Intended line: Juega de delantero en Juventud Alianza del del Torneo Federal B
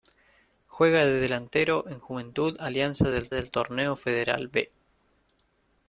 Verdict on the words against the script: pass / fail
pass